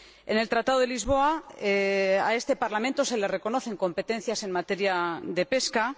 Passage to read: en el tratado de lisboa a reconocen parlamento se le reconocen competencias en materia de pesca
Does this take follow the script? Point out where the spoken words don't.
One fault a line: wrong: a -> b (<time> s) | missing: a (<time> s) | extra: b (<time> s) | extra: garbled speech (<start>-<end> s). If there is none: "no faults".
wrong: reconocen -> este (2.4 s)